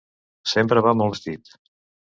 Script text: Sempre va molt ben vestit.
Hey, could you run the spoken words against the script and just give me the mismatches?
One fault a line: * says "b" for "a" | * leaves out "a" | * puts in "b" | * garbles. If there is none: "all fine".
* leaves out "ben"